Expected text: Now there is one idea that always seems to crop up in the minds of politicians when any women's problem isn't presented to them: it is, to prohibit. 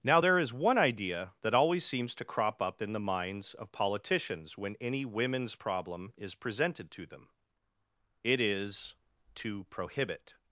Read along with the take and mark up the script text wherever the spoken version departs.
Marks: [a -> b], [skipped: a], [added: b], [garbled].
Now there is one idea that always seems to crop up in the minds of politicians when any women's problem [isn't -> is] presented to them: it is, to prohibit.